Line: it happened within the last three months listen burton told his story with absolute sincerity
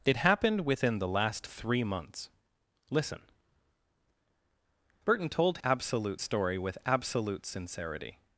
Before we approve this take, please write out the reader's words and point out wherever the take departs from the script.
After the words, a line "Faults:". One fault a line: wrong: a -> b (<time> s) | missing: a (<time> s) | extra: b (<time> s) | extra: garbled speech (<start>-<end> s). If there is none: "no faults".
it happened within the last three months listen burton told absolute story with absolute sincerity
Faults:
wrong: his -> absolute (5.6 s)